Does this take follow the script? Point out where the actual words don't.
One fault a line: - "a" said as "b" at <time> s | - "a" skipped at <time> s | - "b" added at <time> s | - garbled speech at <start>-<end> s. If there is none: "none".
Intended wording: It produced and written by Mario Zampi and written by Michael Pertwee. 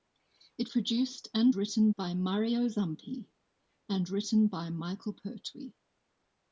none